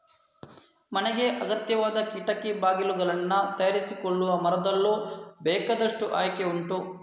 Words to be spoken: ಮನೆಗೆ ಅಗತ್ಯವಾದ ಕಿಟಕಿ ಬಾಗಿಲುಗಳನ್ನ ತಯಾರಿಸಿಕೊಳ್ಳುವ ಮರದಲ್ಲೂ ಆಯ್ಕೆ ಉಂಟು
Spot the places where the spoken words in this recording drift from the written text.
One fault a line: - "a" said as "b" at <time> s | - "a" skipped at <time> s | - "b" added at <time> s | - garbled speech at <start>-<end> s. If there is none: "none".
- "ಬೇಕಾದಷ್ಟು" added at 5.4 s